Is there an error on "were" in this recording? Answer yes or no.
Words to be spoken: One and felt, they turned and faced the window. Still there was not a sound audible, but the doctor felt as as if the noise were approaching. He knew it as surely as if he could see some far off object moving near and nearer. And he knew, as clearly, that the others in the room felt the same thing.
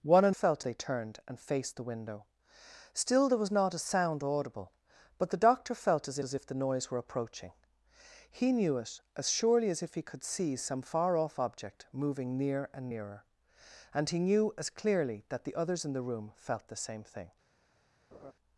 no